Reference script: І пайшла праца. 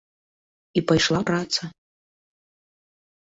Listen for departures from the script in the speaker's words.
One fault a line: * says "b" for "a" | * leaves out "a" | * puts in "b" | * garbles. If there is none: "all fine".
all fine